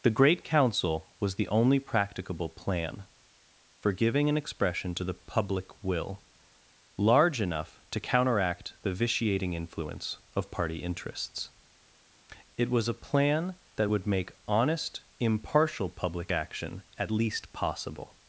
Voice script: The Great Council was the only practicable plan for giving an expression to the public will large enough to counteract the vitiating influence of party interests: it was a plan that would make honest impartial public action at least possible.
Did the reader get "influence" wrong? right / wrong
right